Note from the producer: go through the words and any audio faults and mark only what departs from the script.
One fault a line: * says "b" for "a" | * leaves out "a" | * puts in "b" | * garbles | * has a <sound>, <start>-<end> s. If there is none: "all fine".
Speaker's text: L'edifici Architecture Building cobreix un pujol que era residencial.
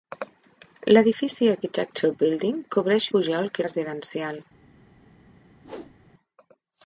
* leaves out "un"
* leaves out "era"
* has a whoosh, 5.6-6.0 s